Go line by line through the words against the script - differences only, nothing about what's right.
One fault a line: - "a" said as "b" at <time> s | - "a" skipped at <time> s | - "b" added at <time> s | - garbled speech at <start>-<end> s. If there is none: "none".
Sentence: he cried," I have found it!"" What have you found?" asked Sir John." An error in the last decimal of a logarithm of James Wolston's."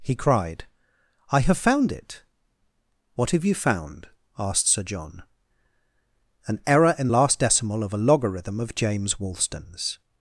- "the" skipped at 7.1 s